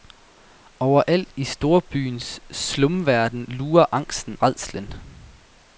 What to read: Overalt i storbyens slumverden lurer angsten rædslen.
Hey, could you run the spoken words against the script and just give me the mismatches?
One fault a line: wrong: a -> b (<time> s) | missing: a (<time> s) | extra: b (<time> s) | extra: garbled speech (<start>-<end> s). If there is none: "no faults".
no faults